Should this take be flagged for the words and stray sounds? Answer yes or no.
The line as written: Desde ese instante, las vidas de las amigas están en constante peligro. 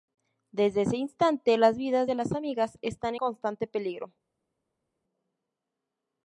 yes